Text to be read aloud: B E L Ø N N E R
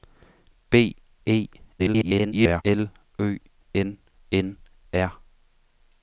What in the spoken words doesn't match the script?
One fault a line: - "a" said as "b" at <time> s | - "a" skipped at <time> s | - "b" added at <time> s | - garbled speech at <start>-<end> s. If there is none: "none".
- garbled speech at 1.8-2.6 s
- "E" skipped at 4.6 s